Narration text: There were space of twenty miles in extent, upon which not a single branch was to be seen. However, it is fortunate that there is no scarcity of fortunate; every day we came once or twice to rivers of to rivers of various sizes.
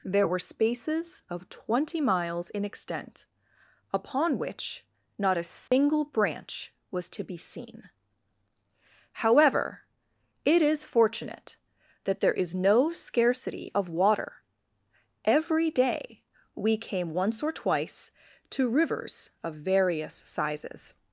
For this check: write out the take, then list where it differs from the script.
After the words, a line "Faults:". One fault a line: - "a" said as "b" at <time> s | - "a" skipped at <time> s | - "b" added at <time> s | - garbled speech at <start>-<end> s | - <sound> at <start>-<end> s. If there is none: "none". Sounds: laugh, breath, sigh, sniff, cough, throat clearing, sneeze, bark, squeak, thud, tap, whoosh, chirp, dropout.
There were spaces of twenty miles in extent, upon which not a single branch was to be seen. However, it is fortunate that there is no scarcity of water; every day we came once or twice to rivers of various sizes.
Faults:
- "space" said as "spaces" at 0.4 s
- dropout at 5.7-5.7 s
- "fortunate" said as "water" at 13.9 s
- "to rivers of" skipped at 19.5 s